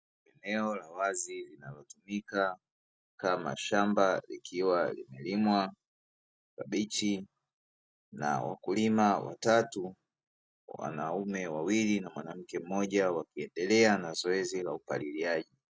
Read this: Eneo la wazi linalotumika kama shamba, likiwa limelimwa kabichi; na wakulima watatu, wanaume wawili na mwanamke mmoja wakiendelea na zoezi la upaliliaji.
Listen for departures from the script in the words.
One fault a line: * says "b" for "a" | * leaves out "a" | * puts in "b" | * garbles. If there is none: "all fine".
all fine